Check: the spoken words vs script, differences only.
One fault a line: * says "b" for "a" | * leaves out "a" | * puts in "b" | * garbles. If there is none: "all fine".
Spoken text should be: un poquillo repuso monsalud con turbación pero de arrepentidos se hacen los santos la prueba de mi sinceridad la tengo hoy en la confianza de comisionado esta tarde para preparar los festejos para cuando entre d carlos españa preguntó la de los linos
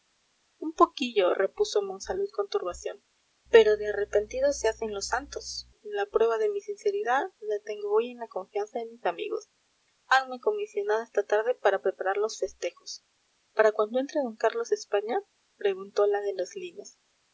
* puts in "mis amigos hanme"